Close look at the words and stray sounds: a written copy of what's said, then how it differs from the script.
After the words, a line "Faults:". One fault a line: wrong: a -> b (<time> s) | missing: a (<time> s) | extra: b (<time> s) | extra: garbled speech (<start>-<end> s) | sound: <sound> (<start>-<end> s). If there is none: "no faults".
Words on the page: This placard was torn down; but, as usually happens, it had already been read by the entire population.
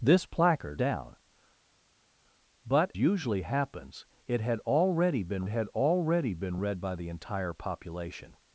This placard down; but, usually happens, it had already been had already been read by the entire population.
Faults:
missing: was torn (0.8 s)
missing: as (2.9 s)
extra: had already been (5.5 s)